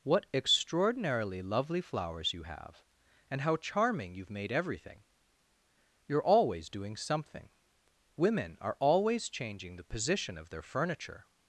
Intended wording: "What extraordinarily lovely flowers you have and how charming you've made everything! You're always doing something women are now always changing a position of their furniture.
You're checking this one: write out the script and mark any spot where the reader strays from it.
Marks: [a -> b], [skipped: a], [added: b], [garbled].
"What extraordinarily lovely flowers you have and how charming you've made everything! You're always doing something women are [skipped: now] always changing [a -> the] position of their furniture.